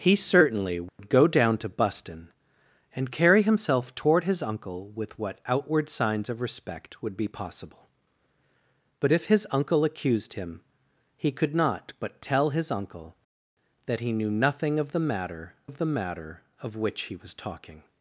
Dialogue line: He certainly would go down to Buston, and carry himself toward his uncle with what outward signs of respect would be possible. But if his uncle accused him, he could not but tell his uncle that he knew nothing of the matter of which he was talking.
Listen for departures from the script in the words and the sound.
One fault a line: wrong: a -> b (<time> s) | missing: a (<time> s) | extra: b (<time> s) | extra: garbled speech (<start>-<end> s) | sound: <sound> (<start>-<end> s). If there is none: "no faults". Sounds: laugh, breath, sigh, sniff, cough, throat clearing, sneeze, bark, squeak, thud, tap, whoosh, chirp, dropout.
sound: dropout (0.9-1.0 s)
extra: the matter of (15.8 s)